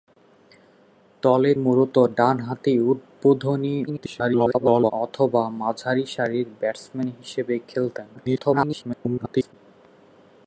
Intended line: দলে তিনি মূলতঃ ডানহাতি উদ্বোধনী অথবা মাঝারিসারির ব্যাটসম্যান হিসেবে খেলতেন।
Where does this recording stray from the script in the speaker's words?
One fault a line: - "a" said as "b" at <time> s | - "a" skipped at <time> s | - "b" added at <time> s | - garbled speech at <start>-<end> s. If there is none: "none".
- "তিনি" skipped at 1.5 s
- garbled speech at 3.9-4.9 s
- garbled speech at 8.2-9.5 s